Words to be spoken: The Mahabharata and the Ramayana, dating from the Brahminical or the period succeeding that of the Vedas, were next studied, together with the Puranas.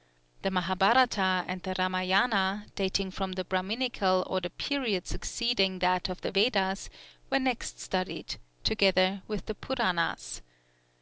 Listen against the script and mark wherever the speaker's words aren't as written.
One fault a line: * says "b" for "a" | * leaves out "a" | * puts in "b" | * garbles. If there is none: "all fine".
all fine